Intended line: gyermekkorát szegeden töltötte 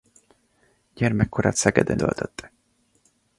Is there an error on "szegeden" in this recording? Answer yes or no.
no